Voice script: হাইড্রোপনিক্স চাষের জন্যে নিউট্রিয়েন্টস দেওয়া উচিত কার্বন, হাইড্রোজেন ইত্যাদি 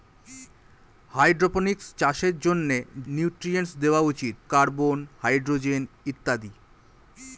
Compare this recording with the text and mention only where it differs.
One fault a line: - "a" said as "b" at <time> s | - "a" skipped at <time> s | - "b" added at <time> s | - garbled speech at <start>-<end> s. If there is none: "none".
none